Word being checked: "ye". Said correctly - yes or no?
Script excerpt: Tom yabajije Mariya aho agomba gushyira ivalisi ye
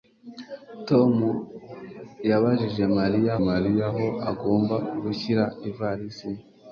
yes